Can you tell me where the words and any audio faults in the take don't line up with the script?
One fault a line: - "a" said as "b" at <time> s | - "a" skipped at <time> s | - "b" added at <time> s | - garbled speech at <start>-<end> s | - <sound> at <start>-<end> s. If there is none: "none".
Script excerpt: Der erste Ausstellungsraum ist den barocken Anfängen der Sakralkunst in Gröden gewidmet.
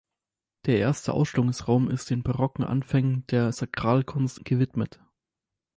- "in Gröden" skipped at 4.4 s